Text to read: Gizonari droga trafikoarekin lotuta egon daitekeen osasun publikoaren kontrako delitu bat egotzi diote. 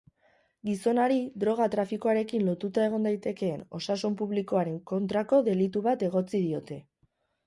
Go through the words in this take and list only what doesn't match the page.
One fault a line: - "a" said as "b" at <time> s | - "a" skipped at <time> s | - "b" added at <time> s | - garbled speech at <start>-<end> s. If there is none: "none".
none